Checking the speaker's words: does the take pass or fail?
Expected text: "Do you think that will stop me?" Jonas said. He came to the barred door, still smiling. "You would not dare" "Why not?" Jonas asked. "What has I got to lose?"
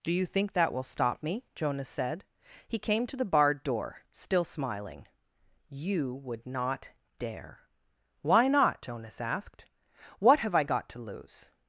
fail